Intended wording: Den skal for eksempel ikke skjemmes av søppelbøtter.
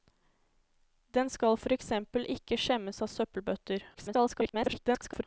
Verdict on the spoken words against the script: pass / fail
fail